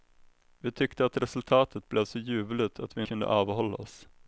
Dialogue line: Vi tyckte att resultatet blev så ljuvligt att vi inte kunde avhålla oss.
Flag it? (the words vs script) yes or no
yes